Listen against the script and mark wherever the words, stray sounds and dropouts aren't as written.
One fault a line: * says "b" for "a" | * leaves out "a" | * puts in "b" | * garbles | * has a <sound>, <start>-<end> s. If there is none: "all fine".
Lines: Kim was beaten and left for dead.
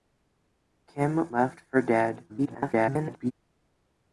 * leaves out "was beaten and"
* garbles